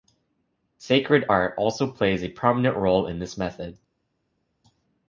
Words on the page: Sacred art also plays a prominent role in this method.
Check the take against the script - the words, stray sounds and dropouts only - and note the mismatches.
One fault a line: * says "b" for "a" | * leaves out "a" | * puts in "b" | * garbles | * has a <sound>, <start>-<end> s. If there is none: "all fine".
all fine